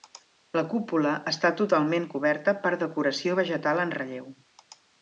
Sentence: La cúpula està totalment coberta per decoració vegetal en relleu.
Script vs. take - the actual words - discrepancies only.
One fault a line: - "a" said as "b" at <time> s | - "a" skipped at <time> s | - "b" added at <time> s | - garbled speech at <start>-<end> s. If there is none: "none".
none